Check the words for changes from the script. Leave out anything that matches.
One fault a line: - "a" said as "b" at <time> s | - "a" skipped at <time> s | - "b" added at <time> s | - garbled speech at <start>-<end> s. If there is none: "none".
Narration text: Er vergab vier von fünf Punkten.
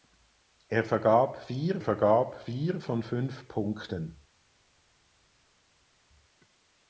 - "vergab vier" added at 1.8 s